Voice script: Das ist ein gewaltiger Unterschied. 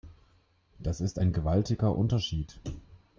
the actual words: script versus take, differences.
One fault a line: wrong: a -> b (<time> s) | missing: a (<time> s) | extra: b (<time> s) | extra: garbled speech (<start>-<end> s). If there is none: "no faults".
no faults